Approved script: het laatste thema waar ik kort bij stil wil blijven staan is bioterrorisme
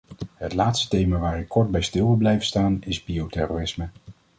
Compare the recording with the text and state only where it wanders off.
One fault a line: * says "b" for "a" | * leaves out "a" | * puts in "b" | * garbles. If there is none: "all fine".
all fine